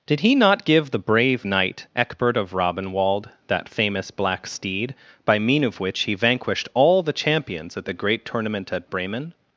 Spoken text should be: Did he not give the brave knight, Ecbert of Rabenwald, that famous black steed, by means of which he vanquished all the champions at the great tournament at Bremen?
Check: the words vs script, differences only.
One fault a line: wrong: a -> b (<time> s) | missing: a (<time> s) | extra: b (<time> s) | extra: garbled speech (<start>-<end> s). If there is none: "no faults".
wrong: means -> mean (5.4 s)